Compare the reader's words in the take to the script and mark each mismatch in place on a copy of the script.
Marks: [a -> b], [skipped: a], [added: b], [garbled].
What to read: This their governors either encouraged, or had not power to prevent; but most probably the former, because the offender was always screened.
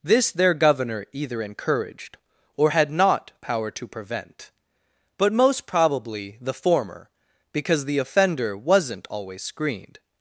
This their [governors -> governor] either encouraged, or had not power to prevent; but most probably the former, because the offender [was -> wasn't] always screened.